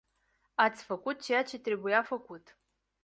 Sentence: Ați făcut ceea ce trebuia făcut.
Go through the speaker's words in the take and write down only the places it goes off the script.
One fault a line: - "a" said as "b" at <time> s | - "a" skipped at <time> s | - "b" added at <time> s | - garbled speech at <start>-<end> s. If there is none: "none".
none